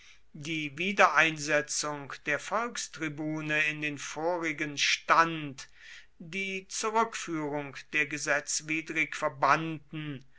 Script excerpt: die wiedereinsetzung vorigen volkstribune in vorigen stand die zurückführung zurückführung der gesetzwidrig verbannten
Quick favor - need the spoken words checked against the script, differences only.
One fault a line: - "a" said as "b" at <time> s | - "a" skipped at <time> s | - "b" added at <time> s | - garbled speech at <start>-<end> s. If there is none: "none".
- "vorigen" said as "der" at 2.3 s
- "den" added at 3.8 s
- "zurückführung" skipped at 7.8 s